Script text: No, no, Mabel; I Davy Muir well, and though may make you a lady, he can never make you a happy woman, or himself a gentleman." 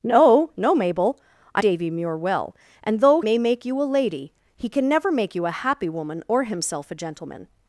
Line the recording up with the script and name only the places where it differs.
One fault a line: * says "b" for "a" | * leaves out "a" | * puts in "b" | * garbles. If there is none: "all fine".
all fine